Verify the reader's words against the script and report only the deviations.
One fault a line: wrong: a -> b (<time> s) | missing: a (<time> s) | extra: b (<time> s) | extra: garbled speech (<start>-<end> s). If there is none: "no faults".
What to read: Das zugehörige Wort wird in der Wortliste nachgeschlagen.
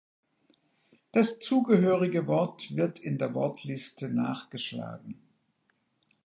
no faults